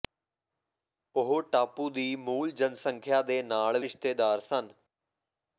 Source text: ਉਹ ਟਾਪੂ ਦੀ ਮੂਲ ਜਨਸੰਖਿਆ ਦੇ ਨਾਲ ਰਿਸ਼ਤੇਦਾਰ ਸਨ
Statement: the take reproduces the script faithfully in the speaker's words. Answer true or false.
true